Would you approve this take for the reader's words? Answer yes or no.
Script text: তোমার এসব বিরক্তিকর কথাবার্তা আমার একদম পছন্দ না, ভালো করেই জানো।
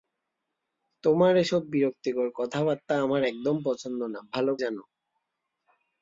no